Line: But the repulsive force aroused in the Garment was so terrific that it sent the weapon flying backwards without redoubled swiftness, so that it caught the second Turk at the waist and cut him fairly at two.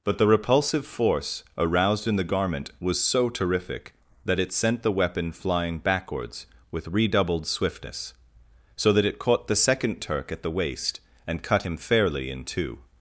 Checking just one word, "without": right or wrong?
wrong